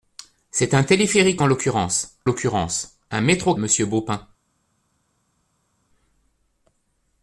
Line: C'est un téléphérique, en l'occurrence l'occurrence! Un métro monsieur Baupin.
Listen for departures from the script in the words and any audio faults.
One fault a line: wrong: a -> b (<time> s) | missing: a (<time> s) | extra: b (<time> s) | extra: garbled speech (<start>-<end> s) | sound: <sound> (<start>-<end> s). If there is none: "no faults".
no faults